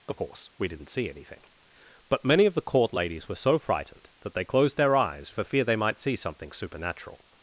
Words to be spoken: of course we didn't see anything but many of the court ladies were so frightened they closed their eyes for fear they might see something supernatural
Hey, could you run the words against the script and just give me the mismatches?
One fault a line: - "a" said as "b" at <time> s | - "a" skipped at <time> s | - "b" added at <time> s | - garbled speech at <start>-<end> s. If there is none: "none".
- "that" added at 4.2 s